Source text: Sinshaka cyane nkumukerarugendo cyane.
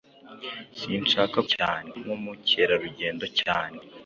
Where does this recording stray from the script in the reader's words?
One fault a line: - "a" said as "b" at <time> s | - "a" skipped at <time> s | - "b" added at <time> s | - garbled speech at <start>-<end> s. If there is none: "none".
none